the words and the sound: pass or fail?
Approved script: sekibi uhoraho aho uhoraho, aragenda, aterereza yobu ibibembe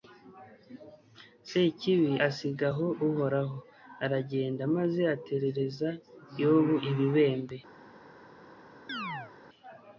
fail